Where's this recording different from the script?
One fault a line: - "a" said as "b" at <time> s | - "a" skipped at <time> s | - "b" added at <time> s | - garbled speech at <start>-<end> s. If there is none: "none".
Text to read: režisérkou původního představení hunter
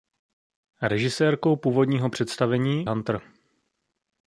none